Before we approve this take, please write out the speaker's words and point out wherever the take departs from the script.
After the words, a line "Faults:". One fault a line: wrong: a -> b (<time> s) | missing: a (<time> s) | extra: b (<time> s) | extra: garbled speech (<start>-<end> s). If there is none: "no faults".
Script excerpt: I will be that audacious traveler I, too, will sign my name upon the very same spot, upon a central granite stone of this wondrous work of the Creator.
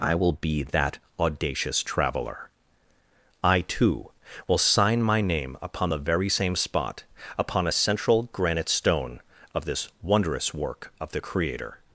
I will be that audacious traveler I, too, will sign my name upon the very same spot, upon a central granite stone of this wondrous work of the Creator.
Faults:
no faults